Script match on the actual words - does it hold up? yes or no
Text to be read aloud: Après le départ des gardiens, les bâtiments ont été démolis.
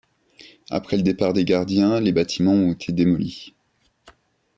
yes